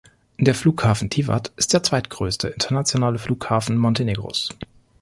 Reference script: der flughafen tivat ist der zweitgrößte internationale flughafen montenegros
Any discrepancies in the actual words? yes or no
no